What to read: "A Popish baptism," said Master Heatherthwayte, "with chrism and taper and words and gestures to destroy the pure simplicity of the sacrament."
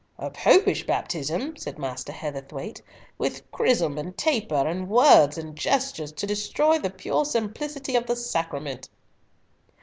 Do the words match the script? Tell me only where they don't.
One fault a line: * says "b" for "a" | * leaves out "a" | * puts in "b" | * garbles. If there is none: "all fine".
all fine